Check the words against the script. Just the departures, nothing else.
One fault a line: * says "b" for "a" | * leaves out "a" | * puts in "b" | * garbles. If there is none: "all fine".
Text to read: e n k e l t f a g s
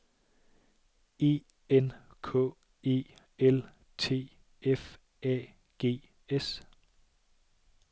all fine